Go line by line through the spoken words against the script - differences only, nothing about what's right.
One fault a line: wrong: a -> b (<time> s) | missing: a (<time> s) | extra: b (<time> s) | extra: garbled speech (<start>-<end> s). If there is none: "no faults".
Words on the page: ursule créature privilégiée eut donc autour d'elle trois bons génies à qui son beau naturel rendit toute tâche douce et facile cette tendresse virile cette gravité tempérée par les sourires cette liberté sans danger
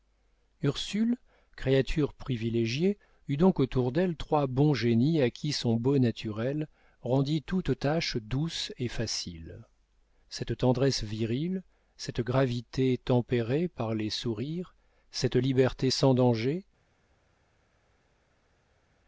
no faults